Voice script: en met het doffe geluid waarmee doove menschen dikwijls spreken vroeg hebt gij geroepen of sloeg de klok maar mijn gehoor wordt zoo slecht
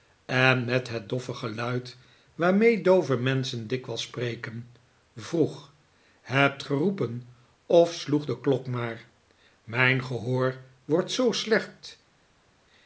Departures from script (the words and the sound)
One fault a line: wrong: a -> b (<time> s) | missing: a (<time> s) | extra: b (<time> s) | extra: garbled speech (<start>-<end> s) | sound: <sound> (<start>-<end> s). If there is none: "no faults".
missing: gij (6.6 s)